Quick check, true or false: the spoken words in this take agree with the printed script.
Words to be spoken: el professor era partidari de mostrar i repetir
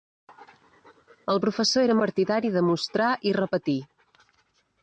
true